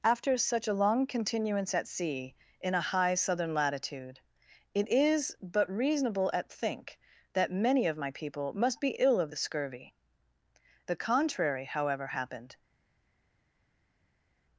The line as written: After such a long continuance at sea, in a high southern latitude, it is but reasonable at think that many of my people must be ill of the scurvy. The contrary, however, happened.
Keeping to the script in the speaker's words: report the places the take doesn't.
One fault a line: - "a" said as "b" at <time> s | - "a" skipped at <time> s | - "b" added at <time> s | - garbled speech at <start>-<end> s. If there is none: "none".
none